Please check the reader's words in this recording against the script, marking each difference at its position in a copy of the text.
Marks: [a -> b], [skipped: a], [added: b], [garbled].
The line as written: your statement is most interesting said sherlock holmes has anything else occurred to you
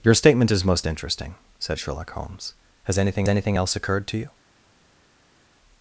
your statement is most interesting said sherlock holmes has anything [added: anything] else occurred to you